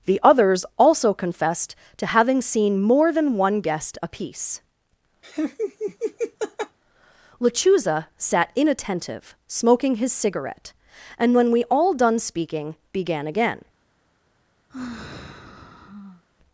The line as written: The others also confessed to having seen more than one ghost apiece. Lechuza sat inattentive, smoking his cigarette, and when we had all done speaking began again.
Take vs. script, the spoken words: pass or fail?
fail